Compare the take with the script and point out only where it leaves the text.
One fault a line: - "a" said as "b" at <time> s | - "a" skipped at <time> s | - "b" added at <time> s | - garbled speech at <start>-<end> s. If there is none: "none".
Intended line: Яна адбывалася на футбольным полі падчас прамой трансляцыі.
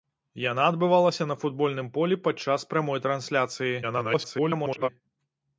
- garbled speech at 3.8-4.9 s